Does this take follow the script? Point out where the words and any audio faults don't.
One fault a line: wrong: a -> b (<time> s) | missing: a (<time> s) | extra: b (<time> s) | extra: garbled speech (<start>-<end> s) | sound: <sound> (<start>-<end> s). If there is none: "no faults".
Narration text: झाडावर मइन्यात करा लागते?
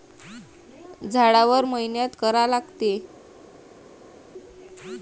no faults